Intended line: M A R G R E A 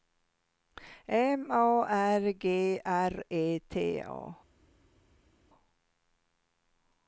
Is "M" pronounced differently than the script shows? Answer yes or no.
no